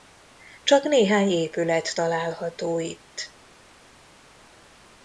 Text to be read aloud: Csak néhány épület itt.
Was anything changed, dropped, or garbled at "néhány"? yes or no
no